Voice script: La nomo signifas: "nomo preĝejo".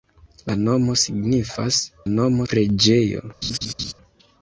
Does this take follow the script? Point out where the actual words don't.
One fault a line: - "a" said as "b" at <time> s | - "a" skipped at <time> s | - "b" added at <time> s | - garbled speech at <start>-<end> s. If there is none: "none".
none